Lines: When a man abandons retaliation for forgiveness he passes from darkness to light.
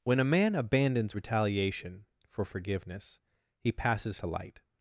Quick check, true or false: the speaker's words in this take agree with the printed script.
false